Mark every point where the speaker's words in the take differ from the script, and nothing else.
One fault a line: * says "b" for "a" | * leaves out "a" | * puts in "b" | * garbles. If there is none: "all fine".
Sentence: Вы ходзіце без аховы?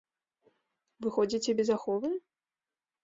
all fine